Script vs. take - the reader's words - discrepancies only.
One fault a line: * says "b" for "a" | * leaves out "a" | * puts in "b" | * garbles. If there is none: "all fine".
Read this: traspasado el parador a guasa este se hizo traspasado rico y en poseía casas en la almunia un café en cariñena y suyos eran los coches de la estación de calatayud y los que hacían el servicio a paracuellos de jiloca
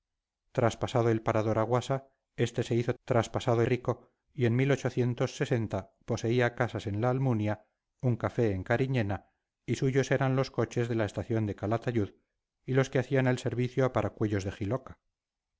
all fine